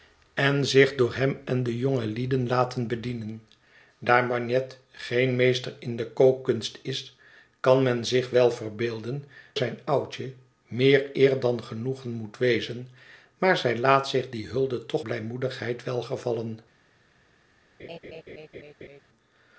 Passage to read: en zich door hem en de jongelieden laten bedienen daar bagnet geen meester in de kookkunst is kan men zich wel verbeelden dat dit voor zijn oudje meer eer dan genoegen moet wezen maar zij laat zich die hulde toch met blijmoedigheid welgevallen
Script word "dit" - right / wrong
wrong